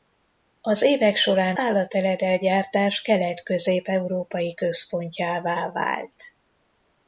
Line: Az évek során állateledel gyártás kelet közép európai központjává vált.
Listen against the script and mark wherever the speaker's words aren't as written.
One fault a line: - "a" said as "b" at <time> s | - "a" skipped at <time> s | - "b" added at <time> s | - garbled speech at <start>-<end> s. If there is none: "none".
none